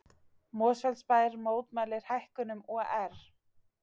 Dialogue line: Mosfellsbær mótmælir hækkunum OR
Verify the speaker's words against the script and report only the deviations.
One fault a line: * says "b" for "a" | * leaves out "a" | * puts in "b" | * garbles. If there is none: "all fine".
all fine